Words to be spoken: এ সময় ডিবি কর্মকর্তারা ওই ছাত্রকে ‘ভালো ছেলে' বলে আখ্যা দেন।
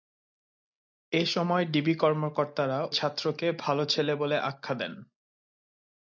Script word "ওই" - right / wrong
wrong